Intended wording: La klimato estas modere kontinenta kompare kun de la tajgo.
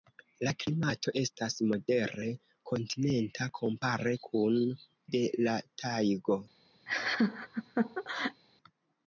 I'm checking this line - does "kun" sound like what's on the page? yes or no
yes